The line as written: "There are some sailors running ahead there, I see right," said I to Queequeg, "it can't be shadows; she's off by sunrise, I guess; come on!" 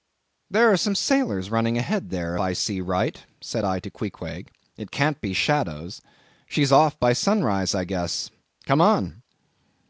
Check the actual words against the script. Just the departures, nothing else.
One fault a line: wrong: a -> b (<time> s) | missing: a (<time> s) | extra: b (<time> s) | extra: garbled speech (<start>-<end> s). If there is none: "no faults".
no faults